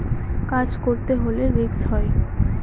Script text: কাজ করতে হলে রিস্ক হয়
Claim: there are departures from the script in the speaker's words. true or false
false